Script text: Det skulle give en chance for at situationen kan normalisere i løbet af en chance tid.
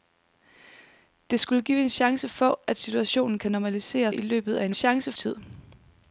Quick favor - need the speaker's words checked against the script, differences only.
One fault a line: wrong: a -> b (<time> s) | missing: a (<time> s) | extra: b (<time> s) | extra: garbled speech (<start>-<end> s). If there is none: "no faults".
no faults